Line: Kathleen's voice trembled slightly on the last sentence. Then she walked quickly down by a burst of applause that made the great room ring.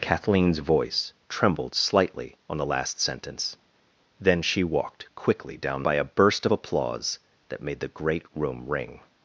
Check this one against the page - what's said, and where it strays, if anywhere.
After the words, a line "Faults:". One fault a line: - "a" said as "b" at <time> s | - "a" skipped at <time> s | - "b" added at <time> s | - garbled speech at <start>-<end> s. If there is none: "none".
Kathleen's voice trembled slightly on the last sentence. Then she walked quickly down by a burst of applause that made the great room ring.
Faults:
none